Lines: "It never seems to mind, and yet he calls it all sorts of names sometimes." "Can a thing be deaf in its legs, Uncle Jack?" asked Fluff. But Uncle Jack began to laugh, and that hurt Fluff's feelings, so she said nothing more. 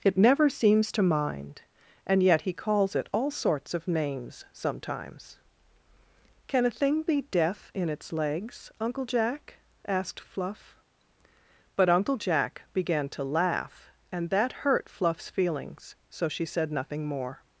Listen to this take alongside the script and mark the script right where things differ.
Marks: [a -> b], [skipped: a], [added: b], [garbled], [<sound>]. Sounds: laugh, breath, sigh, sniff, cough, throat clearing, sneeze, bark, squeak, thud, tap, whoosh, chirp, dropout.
"It never seems to mind, and yet he calls it all sorts of names sometimes." "Can a thing be deaf in its legs, Uncle Jack?" asked Fluff. But Uncle Jack began to laugh, and that hurt Fluff's feelings, so she said nothing more.